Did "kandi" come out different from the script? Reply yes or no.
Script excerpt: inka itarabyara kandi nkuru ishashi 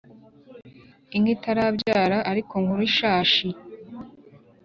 yes